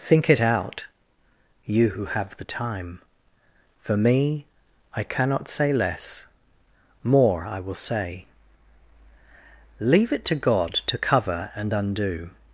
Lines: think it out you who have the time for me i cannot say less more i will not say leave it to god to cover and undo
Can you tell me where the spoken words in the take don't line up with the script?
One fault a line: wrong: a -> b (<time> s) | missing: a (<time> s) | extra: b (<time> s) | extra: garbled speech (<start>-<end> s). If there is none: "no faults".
missing: not (7.8 s)